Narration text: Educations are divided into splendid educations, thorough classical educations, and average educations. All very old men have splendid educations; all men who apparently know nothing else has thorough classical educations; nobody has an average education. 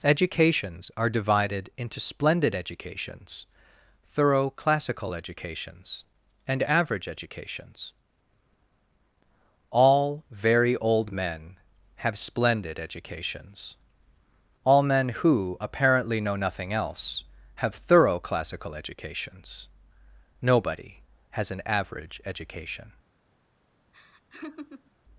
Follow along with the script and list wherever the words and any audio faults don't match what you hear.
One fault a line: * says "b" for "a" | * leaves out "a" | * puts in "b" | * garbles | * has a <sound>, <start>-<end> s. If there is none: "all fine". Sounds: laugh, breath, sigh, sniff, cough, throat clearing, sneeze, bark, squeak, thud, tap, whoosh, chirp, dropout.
* says "have" for "has"
* has a laugh, 23.9-24.9 s